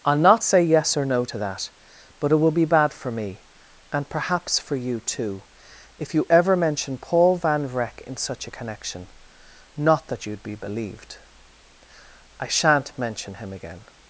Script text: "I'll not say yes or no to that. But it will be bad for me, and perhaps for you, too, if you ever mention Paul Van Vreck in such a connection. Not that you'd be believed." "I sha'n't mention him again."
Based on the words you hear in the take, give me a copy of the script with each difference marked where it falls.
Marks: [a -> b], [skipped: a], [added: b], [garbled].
"I'll not say yes or no to that. But it will be bad for me, and perhaps for you, too, if you ever mention Paul Van Vreck in such a connection. Not that you'd be believed." "I sha'n't mention him again."